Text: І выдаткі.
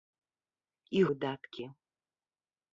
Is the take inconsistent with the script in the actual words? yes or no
no